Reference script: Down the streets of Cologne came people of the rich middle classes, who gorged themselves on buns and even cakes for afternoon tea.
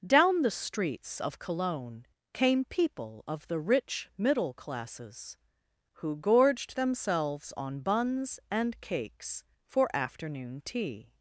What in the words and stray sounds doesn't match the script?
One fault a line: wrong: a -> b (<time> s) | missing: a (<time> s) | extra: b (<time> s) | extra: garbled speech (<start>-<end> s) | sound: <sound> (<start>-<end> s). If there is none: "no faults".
missing: even (8.8 s)